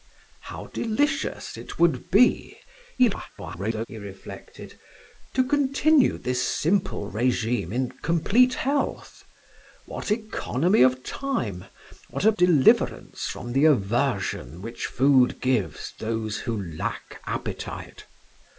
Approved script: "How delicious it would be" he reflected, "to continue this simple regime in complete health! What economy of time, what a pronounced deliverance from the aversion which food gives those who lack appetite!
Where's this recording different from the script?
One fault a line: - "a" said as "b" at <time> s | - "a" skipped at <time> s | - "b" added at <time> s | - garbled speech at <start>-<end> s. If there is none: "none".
- garbled speech at 3.0-3.9 s
- "pronounced" skipped at 12.3 s